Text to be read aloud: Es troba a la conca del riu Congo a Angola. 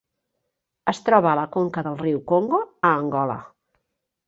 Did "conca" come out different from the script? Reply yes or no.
no